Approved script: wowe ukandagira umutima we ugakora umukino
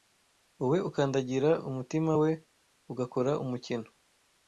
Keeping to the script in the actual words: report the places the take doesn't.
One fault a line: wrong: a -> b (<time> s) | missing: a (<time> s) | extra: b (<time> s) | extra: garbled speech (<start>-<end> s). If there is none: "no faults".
no faults